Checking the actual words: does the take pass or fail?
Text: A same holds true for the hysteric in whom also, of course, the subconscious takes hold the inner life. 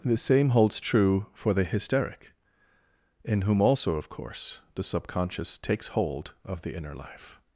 fail